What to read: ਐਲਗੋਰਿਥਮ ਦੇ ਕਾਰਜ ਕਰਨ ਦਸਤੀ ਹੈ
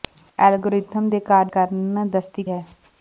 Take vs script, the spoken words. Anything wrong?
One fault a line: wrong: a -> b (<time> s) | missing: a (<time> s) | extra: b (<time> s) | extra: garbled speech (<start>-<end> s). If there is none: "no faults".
no faults